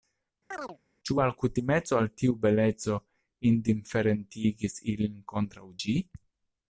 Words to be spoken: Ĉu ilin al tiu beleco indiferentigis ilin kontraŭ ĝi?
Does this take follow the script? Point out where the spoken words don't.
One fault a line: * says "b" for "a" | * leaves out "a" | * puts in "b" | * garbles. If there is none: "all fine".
* says "alkutimeco" for "ilin"